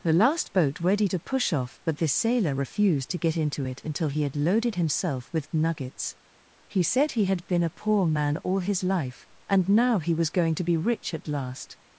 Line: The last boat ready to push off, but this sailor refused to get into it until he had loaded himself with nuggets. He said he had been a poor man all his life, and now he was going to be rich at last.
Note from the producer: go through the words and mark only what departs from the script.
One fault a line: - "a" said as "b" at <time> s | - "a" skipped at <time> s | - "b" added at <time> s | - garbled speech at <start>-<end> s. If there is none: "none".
none